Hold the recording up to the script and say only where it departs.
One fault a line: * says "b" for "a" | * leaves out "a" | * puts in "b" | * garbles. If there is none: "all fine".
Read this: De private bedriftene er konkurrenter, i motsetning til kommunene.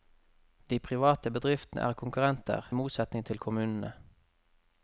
* leaves out "i"